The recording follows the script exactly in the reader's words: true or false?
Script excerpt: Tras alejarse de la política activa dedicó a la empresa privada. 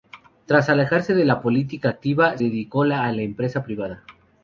true